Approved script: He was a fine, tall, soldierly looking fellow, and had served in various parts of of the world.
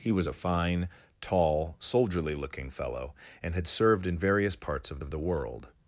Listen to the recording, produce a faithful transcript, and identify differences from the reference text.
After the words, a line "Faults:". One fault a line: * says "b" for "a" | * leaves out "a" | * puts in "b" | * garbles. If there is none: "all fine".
He was a fine, tall, soldierly looking fellow, and had served in various parts of of the world.
Faults:
all fine